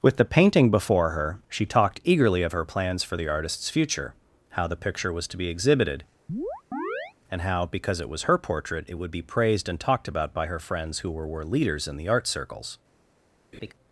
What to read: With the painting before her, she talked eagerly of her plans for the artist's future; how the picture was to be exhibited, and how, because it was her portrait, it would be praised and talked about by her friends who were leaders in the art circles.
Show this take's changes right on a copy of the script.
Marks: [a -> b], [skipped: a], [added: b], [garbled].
With the painting before her, she talked eagerly of her plans for the artist's future; how the picture was to be exhibited, and how, because it was her portrait, it would be praised and talked about by her friends who were [added: were] leaders in the art circles.